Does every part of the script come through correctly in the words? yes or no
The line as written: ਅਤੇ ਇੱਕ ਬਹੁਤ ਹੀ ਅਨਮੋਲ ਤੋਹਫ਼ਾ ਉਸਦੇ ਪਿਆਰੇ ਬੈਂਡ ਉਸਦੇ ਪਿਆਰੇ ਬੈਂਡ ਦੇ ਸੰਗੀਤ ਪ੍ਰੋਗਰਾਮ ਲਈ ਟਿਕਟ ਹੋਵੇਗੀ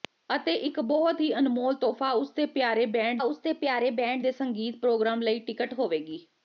yes